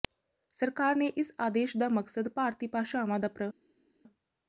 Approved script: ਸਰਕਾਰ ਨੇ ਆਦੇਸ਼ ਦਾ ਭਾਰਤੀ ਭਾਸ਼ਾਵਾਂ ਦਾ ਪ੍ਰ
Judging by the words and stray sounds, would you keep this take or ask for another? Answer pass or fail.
fail